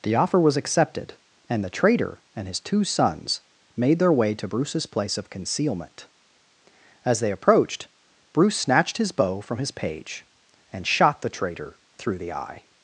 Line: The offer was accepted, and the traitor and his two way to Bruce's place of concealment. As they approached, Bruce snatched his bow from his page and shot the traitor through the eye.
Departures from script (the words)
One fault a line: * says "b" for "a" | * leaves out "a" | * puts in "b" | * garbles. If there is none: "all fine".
* puts in "sons made their"